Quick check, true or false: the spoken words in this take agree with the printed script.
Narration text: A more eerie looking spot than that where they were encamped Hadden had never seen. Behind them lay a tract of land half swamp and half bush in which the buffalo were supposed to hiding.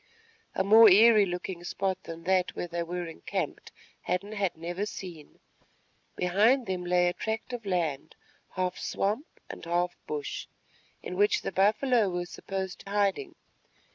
true